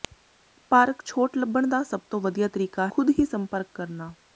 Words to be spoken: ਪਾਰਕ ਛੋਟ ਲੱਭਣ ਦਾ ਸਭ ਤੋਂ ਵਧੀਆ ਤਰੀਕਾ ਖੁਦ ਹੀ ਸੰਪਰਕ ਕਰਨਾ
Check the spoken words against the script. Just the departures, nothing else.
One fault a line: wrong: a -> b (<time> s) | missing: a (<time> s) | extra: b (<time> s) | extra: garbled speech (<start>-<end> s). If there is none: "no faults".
no faults